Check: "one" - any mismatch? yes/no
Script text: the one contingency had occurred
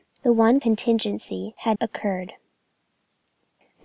no